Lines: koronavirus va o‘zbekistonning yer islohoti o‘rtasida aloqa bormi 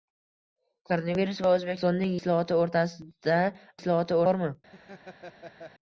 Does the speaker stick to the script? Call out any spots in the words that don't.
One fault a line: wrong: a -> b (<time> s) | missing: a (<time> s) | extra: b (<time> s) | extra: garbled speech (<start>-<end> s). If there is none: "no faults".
missing: yer (2.2 s)
wrong: aloqa -> islohoti (3.8 s)